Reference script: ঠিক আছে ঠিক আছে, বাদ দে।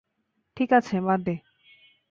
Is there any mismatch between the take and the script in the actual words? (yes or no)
yes